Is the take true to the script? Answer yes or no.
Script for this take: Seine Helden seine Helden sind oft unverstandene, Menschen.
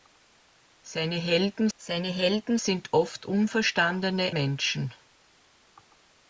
yes